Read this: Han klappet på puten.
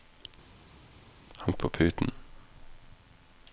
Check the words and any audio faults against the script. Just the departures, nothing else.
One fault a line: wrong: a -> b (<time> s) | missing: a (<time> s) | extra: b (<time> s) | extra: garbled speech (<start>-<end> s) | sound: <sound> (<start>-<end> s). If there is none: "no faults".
missing: klappet (1.5 s)